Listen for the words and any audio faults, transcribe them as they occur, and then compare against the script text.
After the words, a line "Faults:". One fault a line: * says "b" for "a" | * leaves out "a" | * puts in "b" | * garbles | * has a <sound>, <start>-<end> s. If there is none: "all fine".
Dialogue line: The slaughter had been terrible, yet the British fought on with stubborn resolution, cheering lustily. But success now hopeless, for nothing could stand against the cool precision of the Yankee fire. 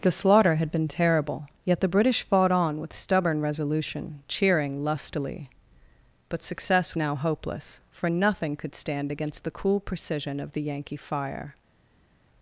The slaughter had been terrible, yet the British fought on with stubborn resolution, cheering lustily. But success now hopeless, for nothing could stand against the cool precision of the Yankee fire.
Faults:
all fine